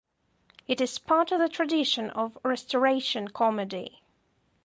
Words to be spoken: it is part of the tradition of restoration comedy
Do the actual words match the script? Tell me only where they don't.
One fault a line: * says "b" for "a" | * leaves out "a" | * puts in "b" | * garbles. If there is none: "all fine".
all fine